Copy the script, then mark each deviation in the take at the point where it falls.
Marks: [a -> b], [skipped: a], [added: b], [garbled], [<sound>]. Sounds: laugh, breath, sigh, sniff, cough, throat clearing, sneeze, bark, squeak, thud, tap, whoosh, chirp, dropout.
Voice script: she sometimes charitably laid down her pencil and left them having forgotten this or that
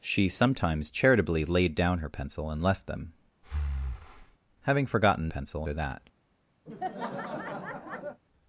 she sometimes charitably laid down her pencil and left them [breath] having forgotten [this -> pencil] or that [laugh]